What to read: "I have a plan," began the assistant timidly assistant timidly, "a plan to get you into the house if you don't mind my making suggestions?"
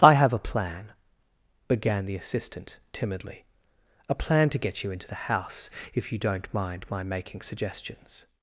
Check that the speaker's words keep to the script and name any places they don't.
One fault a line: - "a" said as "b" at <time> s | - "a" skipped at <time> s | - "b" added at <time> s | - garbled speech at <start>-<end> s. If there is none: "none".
- "assistant timidly" skipped at 3.5 s